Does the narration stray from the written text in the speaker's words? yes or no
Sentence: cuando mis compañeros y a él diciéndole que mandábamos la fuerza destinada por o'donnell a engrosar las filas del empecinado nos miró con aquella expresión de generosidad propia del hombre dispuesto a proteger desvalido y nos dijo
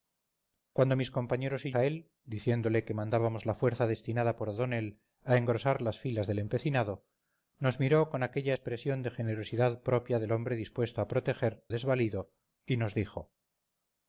no